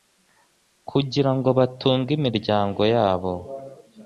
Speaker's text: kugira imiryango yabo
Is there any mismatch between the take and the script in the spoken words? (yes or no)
yes